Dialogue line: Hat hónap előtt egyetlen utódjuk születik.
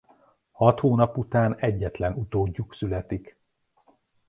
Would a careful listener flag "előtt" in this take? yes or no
yes